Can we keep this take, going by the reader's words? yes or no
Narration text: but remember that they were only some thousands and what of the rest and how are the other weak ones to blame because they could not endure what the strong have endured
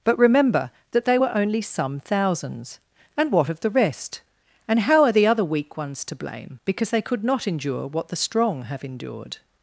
yes